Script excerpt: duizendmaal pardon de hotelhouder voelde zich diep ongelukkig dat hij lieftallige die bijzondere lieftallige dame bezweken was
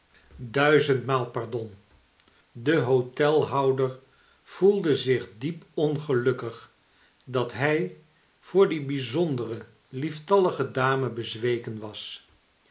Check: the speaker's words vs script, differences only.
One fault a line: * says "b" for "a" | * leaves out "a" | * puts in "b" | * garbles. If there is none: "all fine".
* says "voor" for "lieftallige"